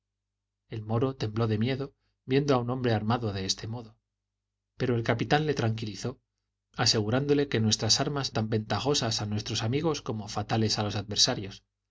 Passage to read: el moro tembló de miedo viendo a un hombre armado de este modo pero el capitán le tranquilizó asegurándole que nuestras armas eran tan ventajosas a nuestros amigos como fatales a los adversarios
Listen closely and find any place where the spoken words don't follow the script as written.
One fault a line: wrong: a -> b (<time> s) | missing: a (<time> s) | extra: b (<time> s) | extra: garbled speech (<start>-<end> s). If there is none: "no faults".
missing: eran (8.3 s)